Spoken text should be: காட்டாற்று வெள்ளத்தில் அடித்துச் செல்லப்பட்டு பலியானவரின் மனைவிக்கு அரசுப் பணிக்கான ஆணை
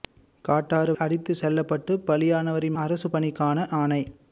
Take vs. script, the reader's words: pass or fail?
fail